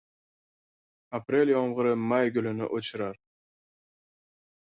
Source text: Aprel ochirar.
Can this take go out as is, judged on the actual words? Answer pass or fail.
fail